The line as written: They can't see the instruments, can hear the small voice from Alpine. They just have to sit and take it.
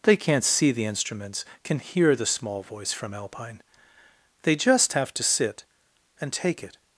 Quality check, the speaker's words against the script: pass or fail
pass